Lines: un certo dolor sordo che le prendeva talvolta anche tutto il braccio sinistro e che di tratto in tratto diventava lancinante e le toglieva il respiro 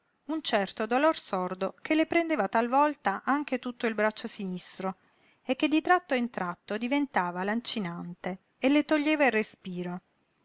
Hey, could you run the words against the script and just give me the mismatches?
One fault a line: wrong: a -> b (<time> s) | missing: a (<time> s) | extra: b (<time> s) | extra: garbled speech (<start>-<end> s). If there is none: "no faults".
no faults